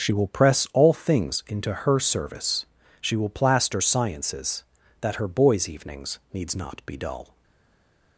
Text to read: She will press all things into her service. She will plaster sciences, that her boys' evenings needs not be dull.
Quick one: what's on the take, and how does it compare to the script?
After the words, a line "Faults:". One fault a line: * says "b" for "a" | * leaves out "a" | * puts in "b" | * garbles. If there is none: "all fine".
She will press all things into her service. She will plaster sciences, that her boys' evenings needs not be dull.
Faults:
all fine